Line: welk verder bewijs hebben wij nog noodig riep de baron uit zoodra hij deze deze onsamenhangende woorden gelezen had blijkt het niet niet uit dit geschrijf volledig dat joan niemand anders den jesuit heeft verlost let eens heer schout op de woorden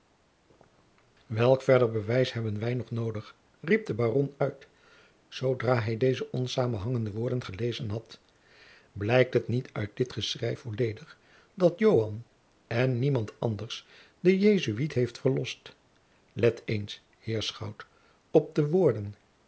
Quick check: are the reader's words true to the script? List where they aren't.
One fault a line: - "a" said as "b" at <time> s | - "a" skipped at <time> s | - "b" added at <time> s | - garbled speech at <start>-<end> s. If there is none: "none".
- "deze" skipped at 6.3 s
- "niet" skipped at 9.7 s
- "en" added at 12.7 s